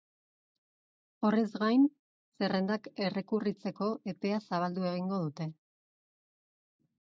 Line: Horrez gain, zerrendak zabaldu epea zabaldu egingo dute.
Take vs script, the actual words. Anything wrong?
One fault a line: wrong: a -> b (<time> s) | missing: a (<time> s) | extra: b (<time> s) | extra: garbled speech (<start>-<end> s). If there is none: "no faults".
wrong: zabaldu -> errekurritzeko (3.1 s)